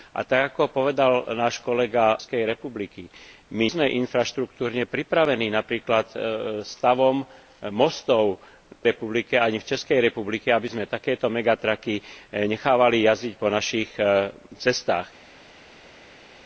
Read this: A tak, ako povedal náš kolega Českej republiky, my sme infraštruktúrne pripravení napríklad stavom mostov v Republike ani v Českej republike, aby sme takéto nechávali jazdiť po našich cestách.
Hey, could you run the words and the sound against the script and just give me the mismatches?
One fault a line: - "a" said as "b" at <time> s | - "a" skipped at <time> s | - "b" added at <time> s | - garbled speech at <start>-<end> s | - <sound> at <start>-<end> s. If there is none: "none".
none